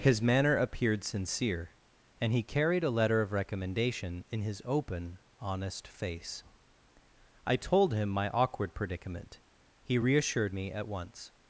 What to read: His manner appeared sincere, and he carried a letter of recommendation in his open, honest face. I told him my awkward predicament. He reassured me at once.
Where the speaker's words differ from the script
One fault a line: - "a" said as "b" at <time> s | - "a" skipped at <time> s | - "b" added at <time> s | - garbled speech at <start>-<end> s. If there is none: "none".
none